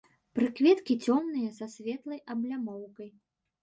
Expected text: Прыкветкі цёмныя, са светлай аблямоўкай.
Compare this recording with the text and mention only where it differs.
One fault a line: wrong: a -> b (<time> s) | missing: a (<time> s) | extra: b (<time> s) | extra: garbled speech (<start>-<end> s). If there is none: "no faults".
no faults